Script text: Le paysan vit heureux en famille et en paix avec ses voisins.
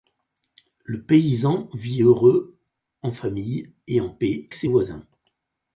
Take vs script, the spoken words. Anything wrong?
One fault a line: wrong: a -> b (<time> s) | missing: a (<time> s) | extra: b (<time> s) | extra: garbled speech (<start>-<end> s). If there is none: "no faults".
missing: avec (4.5 s)